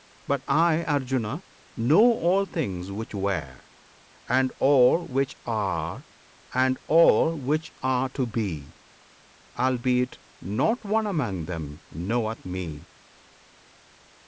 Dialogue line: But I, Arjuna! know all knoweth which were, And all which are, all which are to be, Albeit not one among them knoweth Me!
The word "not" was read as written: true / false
true